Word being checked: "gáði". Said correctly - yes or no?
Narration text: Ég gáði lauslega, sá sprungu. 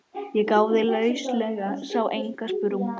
yes